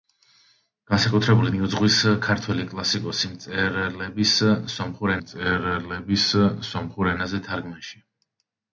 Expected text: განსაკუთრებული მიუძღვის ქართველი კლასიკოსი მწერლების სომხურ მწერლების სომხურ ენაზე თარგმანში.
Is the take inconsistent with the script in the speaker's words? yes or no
no